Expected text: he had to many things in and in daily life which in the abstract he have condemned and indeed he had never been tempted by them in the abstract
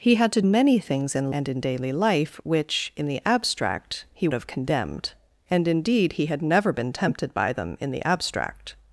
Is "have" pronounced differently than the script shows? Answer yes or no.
no